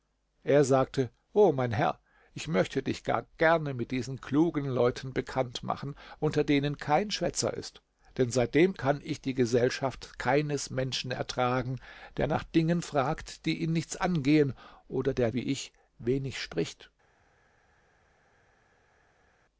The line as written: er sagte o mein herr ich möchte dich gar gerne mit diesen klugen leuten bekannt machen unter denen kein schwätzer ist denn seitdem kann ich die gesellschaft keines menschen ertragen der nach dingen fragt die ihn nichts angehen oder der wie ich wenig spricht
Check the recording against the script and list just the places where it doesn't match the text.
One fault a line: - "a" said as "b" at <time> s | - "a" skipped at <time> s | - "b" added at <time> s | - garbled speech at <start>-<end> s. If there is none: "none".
none